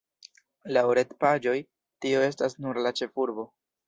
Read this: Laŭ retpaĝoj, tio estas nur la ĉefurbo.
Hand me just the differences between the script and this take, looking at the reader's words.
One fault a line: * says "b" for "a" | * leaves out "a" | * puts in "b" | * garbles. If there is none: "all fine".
all fine